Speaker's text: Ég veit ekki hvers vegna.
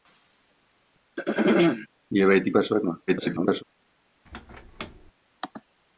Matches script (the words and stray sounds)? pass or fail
fail